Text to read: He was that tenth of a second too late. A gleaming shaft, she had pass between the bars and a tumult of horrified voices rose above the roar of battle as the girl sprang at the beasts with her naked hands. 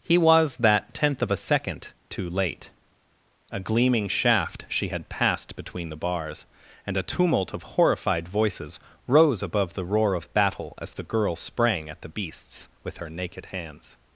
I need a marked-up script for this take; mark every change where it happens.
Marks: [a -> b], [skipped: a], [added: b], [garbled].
He was that tenth of a second too late. A gleaming shaft, she had [pass -> passed] between the bars and a tumult of horrified voices rose above the roar of battle as the girl sprang at the beasts with her naked hands.